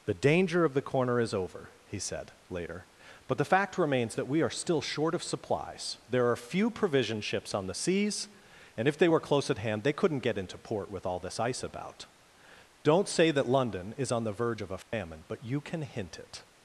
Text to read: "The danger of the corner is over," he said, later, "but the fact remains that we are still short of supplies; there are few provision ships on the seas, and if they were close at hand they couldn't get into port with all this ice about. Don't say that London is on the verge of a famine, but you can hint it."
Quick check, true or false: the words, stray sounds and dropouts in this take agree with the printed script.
false